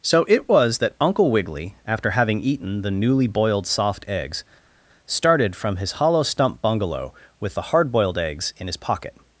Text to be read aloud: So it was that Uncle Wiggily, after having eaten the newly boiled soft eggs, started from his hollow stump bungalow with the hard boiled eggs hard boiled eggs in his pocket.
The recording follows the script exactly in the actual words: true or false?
false